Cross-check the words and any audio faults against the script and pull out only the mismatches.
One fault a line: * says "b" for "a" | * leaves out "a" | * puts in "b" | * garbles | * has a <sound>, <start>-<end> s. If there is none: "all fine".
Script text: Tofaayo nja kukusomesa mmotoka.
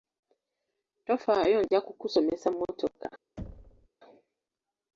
* has a thud, 3.4-3.9 s